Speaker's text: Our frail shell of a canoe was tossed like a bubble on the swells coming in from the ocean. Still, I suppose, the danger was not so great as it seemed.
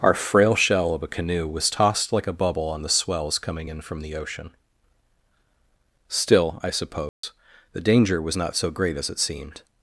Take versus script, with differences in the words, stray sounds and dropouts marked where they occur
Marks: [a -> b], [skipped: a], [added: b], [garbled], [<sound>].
Our frail shell of a canoe was tossed like a bubble on the swells coming in from the ocean. Still, I suppose, [dropout] the danger was not so great as it seemed.